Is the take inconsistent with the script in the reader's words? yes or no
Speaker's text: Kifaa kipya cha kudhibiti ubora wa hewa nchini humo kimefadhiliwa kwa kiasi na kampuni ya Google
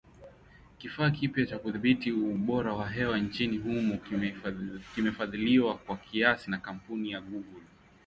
no